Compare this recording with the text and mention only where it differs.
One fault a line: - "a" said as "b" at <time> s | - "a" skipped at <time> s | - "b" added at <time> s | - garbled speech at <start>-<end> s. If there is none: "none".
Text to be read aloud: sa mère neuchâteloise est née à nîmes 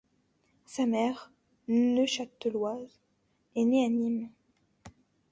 none